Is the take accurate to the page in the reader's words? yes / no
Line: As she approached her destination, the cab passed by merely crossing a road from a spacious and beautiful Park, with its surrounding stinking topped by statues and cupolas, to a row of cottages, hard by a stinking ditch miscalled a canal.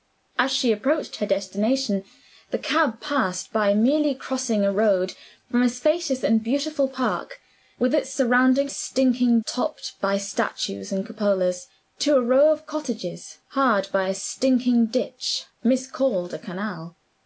yes